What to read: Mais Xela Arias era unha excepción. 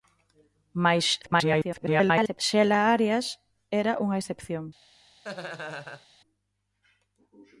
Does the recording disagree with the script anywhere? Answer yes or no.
yes